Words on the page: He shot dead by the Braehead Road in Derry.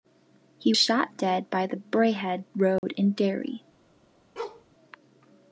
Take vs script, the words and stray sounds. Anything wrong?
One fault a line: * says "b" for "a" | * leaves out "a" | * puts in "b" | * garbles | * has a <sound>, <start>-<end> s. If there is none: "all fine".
* has a dropout, 2.8-2.8 s
* has a bark, 4.4-4.7 s